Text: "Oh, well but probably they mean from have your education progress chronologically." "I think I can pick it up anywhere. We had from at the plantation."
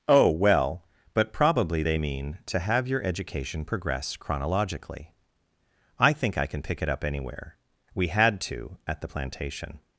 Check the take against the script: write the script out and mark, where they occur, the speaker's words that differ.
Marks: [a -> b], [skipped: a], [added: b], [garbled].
"Oh, well but probably they mean [from -> to] have your education progress chronologically." "I think I can pick it up anywhere. We had [from -> to] at the plantation."